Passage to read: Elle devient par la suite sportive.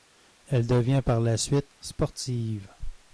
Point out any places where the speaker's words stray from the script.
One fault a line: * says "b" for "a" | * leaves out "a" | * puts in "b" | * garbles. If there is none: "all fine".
all fine